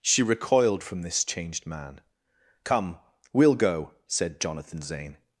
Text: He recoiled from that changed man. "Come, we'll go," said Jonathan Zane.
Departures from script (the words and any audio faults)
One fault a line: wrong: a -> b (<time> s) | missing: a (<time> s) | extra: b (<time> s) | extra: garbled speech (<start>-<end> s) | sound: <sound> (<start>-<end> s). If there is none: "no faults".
wrong: He -> She (0.0 s)
wrong: that -> this (1.0 s)